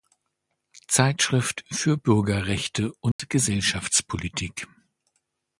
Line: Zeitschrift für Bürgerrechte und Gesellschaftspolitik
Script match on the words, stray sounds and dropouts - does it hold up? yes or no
no